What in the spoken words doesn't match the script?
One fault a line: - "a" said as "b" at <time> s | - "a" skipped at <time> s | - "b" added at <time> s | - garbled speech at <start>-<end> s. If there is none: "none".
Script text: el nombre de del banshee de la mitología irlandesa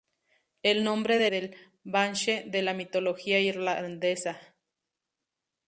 none